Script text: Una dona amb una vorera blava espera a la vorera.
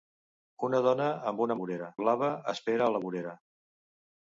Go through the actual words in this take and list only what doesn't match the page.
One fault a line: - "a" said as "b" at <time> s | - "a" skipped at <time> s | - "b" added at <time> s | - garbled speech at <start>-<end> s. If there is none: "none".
none